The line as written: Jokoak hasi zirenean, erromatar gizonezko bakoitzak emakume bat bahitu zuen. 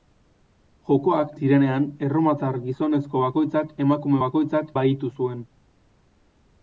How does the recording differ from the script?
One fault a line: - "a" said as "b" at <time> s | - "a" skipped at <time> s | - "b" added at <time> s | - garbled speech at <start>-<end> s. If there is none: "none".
- "hasi" skipped at 1.3 s
- "bat" said as "bakoitzak" at 4.2 s